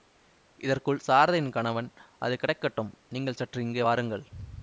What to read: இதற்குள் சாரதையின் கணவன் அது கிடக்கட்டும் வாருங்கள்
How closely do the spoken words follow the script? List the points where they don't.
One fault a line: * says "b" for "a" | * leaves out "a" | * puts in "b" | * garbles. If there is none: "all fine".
* puts in "நீங்கள் சற்று இங்கே"